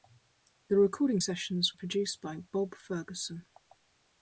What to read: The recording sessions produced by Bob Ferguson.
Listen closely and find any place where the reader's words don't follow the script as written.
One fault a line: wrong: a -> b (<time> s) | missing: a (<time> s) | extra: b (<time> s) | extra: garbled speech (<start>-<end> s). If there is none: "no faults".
no faults